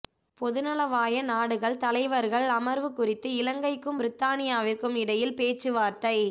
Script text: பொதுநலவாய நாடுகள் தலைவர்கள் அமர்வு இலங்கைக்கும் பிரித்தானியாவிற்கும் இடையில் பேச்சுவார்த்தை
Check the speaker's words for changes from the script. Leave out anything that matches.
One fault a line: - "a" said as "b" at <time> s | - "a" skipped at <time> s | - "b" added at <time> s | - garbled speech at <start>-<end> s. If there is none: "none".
- "குறித்து" added at 2.9 s